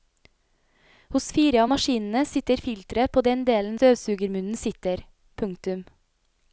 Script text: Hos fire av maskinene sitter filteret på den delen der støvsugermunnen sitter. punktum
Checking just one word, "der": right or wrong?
wrong